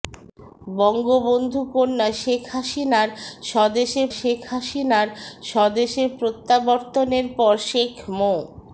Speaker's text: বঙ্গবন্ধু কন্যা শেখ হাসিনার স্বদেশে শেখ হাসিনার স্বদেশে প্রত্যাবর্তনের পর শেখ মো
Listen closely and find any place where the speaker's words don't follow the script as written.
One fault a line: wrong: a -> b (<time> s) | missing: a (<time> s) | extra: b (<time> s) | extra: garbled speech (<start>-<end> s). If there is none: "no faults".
no faults